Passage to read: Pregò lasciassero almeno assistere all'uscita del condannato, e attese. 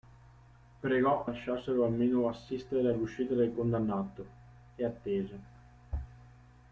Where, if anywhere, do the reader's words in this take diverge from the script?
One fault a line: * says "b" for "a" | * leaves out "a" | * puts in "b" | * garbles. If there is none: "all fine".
all fine